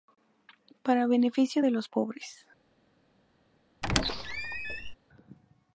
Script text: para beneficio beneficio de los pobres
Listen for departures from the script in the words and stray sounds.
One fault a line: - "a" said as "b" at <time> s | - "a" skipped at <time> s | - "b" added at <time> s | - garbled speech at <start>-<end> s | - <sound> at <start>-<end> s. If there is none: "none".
- "beneficio" skipped at 1.6 s
- squeak at 3.8-4.9 s